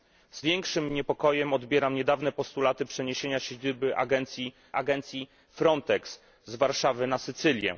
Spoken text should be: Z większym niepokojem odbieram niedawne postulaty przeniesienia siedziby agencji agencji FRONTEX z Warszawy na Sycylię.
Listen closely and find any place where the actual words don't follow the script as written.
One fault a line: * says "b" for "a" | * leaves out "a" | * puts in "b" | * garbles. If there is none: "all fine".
all fine